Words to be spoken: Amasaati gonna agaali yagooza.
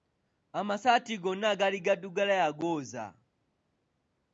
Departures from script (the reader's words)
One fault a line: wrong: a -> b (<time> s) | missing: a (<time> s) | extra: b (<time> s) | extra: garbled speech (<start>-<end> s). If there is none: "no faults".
extra: gaddugala (1.9 s)